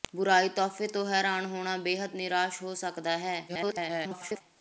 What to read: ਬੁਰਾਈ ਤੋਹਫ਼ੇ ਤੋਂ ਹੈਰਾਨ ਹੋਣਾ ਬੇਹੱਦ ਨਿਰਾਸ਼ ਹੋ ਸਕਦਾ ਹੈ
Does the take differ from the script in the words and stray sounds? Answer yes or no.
yes